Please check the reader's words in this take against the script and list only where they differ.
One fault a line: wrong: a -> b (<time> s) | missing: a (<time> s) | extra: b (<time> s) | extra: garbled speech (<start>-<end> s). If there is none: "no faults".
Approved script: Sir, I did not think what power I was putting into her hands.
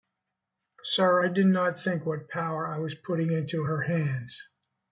no faults